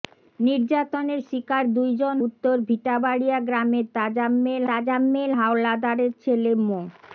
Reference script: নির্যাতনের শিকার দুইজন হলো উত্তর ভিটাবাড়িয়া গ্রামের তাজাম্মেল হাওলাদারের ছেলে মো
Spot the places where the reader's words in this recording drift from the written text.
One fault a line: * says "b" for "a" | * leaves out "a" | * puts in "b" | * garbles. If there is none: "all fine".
* leaves out "হলো"
* puts in "তাজাম্মেল"